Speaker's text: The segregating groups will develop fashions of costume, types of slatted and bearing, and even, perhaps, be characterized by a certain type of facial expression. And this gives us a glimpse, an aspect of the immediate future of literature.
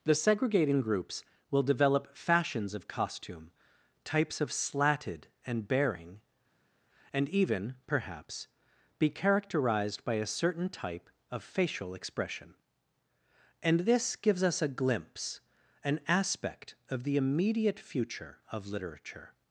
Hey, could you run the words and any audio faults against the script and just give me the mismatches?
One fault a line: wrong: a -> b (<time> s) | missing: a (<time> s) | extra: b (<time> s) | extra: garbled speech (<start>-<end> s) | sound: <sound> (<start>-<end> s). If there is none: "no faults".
no faults